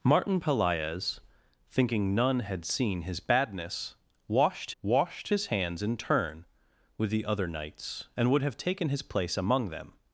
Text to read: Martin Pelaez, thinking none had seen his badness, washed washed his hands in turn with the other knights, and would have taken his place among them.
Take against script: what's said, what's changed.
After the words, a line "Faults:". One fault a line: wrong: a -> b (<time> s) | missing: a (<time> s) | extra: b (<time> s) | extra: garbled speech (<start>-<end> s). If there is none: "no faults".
Martin Pelaez, thinking none had seen his badness, washed washed his hands in turn with the other knights, and would have taken his place among them.
Faults:
no faults